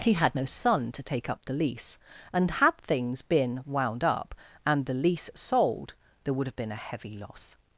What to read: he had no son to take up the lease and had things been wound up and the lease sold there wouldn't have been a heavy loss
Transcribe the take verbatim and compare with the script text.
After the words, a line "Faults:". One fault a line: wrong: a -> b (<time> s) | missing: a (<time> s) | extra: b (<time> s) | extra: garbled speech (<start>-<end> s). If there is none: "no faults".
he had no son to take up the lease and had things been wound up and the lease sold there would have been a heavy loss
Faults:
wrong: wouldn't -> would (6.3 s)